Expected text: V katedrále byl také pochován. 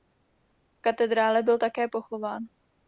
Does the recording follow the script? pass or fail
pass